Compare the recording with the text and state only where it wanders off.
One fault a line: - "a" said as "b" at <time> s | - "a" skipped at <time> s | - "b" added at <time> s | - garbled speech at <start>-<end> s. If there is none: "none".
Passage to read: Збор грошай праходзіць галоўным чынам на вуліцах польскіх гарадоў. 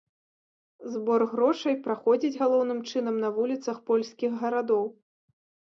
none